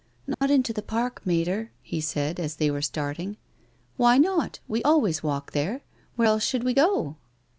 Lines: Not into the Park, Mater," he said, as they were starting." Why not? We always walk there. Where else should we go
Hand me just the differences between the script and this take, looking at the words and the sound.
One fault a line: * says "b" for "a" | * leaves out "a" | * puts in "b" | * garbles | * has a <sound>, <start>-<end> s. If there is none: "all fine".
* has a dropout, 0.3-0.4 s